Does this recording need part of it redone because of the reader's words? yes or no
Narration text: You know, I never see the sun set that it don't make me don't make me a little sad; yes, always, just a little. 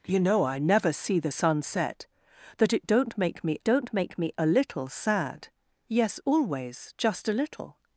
no